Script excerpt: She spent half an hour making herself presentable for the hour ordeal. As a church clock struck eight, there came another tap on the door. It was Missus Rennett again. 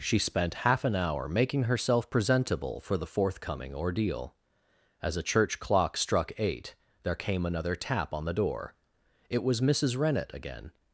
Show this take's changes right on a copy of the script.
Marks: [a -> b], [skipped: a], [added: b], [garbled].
She spent half an hour making herself presentable for the [hour -> forthcoming] ordeal. As a church clock struck eight, there came another tap on the door. It was Missus Rennett again.